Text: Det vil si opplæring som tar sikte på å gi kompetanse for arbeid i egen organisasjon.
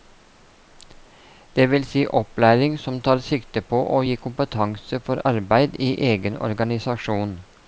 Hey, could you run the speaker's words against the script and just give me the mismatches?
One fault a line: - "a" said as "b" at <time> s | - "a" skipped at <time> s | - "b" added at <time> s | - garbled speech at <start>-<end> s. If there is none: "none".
none